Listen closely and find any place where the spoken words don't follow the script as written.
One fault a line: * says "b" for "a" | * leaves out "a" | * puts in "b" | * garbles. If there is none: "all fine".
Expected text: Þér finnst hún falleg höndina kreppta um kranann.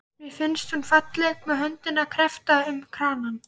* says "Mér" for "Þér"
* puts in "með"